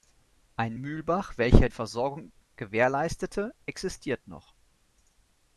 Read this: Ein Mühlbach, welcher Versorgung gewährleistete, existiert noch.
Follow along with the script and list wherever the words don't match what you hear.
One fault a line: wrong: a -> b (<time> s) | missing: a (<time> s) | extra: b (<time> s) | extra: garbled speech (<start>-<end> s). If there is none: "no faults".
no faults